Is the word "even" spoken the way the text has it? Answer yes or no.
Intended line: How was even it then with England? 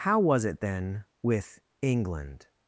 no